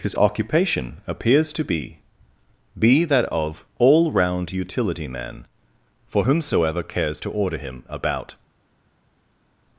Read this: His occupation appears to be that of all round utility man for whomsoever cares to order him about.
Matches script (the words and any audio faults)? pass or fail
fail